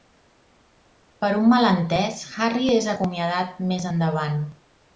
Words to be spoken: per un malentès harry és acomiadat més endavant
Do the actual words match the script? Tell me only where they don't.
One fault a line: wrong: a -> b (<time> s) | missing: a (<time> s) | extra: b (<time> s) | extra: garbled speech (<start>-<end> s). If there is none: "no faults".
no faults